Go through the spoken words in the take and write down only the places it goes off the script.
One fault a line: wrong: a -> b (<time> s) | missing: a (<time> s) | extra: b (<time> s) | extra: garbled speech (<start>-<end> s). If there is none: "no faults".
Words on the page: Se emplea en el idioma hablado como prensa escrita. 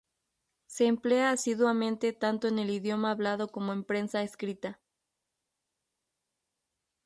extra: asiduamente tanto (1.3 s)
extra: en (3.7 s)